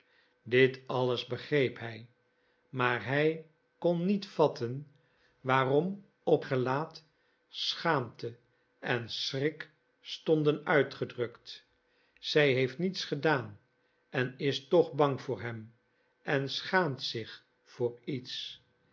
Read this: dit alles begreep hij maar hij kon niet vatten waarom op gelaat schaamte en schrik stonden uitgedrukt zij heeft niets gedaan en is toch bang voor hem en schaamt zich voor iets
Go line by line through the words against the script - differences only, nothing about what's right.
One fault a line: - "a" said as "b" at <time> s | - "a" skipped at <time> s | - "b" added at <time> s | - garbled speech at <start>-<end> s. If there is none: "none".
none